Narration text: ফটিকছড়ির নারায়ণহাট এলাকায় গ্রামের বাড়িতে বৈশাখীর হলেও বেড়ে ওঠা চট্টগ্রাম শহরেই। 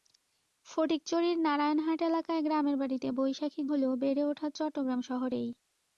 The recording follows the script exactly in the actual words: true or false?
true